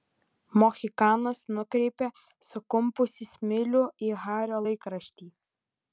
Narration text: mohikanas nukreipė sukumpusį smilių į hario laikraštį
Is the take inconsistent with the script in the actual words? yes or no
no